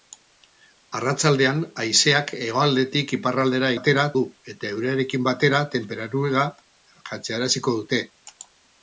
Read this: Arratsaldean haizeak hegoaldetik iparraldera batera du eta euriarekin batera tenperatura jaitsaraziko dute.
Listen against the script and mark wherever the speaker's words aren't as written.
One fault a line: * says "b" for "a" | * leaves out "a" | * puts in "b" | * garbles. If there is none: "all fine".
all fine